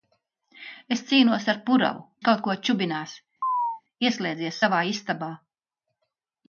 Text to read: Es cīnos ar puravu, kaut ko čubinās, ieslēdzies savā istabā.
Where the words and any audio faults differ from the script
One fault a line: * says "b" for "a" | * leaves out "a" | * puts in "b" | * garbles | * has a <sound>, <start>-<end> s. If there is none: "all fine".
* has a chirp, 3.4-3.8 s